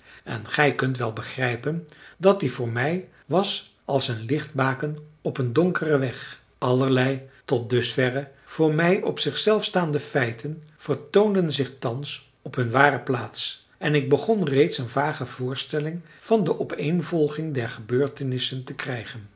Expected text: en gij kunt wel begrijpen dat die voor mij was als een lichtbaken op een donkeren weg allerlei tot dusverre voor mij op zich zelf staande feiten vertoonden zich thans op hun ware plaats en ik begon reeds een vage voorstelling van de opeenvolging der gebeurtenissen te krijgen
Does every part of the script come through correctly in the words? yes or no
yes